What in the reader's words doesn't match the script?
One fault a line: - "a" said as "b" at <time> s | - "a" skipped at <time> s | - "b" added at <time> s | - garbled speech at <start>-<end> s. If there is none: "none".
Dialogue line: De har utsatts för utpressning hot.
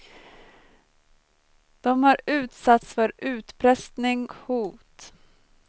none